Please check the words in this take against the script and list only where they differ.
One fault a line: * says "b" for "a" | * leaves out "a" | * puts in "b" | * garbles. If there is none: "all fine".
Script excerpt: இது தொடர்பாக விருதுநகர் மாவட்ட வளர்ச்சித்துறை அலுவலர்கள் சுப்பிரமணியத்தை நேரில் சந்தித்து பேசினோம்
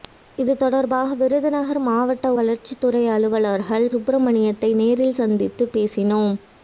all fine